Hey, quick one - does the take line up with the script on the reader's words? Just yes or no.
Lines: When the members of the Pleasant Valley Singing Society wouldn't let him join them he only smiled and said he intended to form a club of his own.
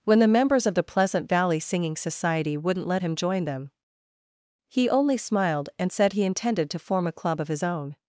yes